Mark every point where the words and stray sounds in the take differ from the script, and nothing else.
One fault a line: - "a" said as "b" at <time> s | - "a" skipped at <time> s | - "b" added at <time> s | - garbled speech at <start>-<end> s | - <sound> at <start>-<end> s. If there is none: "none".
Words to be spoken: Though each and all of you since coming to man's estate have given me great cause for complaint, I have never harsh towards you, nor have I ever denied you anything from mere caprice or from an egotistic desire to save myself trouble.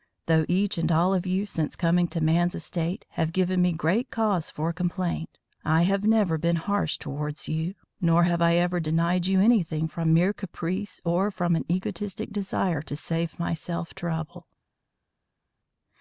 - "been" added at 6.4 s